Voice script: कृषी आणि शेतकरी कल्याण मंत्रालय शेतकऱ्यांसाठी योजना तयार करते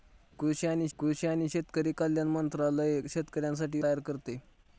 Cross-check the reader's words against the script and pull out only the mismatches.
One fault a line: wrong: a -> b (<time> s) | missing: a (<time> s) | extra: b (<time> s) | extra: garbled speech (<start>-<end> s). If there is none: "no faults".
extra: कृषी आणि (1.0 s)
missing: योजना (3.8 s)